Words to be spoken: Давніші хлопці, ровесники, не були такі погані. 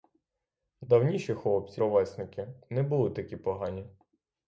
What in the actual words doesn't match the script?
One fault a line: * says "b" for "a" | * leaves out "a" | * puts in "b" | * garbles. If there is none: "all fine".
all fine